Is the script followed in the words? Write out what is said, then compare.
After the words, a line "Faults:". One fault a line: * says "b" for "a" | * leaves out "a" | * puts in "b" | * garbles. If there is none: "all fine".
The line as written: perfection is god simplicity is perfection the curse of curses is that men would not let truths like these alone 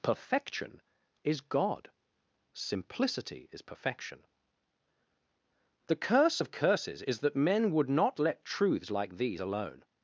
perfection is god simplicity is perfection the curse of curses is that men would not let truths like these alone
Faults:
all fine